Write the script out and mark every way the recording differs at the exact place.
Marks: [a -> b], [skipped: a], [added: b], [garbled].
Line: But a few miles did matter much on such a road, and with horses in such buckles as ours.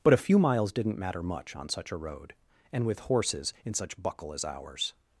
But a few miles [did -> didn't] matter much on such a road, and with horses in such [buckles -> buckle] as ours.